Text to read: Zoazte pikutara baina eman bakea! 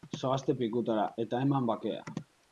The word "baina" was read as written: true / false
false